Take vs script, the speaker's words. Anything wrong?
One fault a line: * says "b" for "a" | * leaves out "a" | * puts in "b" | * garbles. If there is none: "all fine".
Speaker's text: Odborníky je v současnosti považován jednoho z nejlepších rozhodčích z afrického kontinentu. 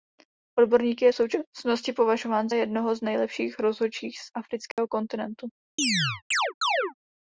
all fine